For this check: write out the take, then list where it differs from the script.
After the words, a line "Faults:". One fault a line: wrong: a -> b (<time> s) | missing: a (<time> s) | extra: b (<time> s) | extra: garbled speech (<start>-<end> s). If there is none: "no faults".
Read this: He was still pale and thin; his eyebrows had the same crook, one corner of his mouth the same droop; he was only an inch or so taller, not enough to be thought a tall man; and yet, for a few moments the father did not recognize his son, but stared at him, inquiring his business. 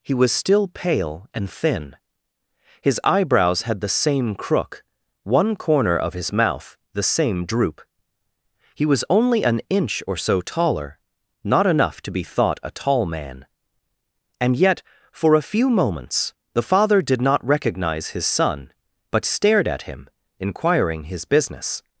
He was still pale and thin; his eyebrows had the same crook, one corner of his mouth the same droop; he was only an inch or so taller, not enough to be thought a tall man; and yet, for a few moments the father did not recognize his son, but stared at him, inquiring his business.
Faults:
no faults